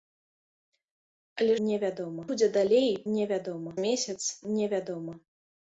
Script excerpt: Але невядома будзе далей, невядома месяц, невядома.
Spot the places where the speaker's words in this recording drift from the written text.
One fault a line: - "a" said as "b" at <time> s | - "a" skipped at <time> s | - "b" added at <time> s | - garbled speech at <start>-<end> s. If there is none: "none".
none